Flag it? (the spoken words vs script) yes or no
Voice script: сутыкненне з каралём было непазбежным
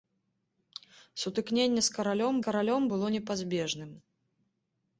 yes